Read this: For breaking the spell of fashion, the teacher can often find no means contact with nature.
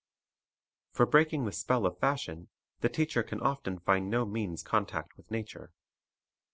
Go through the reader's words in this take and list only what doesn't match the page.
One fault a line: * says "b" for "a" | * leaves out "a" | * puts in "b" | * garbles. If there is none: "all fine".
all fine